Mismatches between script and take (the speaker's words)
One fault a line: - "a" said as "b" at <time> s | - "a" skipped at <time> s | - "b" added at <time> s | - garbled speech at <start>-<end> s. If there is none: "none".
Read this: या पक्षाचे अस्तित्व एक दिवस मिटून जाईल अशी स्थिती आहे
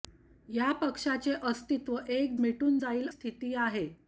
- "दिवस" skipped at 2.4 s
- "अशी" skipped at 3.1 s